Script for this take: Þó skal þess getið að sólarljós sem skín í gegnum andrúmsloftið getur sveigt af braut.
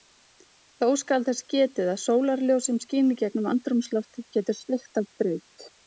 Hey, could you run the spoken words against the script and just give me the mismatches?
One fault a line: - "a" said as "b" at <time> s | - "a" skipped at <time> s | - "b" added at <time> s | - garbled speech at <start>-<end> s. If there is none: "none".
none